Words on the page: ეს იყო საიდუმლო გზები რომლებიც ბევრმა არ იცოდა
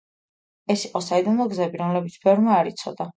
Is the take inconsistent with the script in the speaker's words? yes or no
no